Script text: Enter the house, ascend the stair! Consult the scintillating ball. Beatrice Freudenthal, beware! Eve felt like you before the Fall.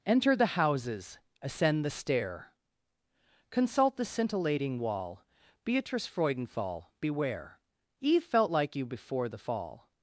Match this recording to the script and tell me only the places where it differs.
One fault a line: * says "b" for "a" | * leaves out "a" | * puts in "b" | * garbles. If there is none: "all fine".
* says "houses" for "house"
* says "wall" for "ball"